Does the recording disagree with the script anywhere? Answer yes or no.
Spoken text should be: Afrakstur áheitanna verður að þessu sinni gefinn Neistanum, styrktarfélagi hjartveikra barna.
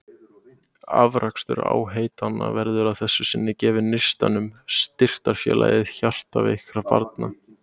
no